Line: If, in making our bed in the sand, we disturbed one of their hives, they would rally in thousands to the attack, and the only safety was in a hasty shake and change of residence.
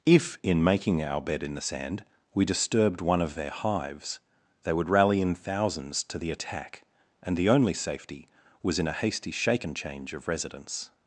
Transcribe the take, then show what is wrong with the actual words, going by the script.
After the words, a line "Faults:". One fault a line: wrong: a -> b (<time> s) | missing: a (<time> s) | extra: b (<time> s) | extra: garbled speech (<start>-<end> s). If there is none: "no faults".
If, in making our bed in the sand, we disturbed one of their hives, they would rally in thousands to the attack, and the only safety was in a hasty shake and change of residence.
Faults:
no faults